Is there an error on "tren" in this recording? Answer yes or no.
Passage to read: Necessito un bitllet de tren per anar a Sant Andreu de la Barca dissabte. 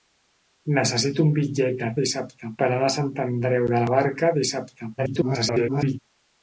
yes